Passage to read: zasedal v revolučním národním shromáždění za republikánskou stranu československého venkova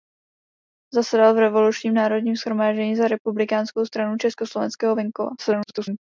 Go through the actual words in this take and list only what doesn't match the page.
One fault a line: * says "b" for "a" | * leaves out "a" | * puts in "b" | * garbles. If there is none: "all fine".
* garbles